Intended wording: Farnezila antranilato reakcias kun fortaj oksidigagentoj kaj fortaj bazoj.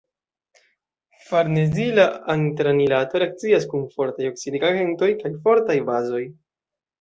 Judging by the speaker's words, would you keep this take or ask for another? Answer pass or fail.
pass